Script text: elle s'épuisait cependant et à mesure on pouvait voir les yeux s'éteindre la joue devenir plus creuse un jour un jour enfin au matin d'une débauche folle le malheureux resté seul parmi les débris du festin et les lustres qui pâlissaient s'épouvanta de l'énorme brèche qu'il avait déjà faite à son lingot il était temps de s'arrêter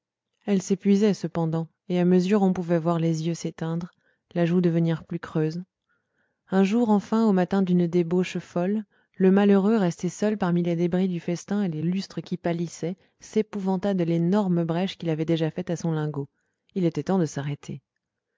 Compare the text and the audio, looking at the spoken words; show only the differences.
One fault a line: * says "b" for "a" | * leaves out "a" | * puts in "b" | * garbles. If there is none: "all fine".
* leaves out "un jour"